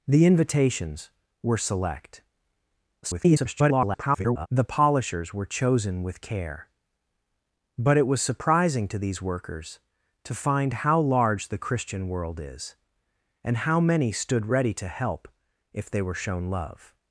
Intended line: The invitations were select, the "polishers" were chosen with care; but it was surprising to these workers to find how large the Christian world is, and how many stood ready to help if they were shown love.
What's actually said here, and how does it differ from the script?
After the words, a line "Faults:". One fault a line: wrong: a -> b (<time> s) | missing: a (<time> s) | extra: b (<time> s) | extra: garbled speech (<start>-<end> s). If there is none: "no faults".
The invitations were select, [garbled] the "polishers" were chosen with care; but it was surprising to these workers to find how large the Christian world is, and how many stood ready to help if they were shown love.
Faults:
extra: garbled speech (3.0-4.5 s)